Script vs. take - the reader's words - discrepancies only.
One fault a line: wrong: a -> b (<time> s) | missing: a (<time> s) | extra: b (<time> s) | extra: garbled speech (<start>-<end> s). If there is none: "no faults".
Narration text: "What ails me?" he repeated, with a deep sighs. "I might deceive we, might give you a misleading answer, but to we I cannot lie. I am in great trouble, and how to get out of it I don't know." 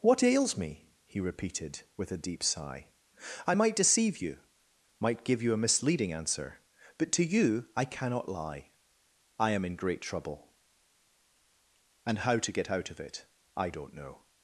wrong: sighs -> sigh (2.4 s)
wrong: we -> you (4.2 s)
wrong: we -> you (7.2 s)